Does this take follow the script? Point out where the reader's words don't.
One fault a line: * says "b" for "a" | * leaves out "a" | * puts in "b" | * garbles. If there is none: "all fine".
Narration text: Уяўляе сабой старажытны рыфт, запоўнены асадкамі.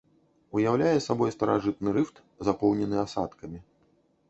all fine